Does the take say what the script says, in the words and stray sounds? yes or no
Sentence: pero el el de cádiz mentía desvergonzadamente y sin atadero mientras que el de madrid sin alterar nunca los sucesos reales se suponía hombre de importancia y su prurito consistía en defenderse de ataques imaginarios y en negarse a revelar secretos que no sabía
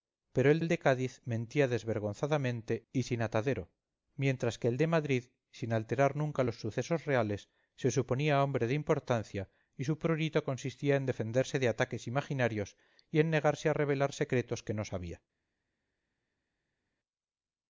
yes